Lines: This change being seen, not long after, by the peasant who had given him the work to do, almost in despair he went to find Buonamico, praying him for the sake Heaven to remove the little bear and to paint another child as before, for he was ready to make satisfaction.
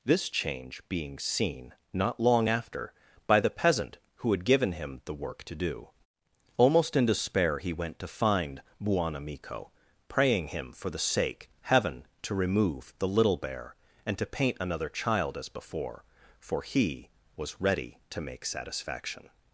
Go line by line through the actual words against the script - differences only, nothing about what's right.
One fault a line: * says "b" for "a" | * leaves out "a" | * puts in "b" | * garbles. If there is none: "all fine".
all fine